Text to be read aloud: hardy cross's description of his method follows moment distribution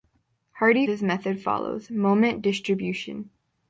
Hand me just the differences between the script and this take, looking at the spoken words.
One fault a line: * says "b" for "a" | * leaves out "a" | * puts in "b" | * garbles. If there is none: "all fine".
* leaves out "cross's description of"